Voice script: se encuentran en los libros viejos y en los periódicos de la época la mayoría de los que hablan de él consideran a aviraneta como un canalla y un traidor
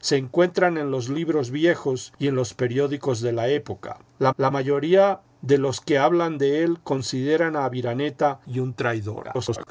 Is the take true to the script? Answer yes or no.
no